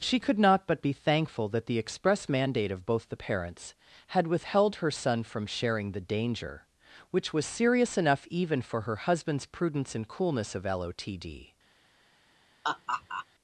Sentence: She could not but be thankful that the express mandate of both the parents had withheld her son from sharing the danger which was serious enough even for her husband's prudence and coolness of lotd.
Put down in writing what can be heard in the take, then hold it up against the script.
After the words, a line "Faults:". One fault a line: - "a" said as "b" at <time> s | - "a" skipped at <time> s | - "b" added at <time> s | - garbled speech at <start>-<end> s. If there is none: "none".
She could not but be thankful that the express mandate of both the parents had withheld her son from sharing the danger which was serious enough even for her husband's prudence and coolness of lotd.
Faults:
none